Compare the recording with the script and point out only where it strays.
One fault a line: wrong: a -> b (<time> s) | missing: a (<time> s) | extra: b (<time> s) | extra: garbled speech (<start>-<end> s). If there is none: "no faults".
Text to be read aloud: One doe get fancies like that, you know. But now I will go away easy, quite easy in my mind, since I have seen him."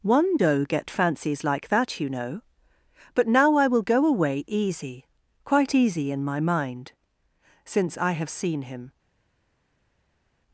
no faults